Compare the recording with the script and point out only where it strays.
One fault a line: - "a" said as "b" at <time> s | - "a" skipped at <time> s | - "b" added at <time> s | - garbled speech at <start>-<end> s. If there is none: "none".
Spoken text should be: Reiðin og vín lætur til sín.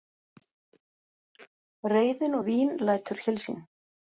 none